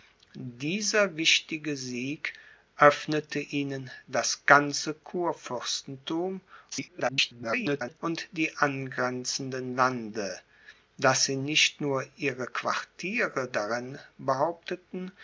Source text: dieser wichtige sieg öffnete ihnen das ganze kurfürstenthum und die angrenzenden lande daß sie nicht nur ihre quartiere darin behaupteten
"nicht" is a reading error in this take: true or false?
false